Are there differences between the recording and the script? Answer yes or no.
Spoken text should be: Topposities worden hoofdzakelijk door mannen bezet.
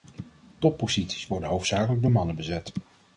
no